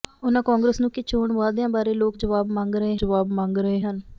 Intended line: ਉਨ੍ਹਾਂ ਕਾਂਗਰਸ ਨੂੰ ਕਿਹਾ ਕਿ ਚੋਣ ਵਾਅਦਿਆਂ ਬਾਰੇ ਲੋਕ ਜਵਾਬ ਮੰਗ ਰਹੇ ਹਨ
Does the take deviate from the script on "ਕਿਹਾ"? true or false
true